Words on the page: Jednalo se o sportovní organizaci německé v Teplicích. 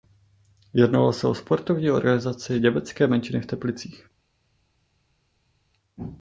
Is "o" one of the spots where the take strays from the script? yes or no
no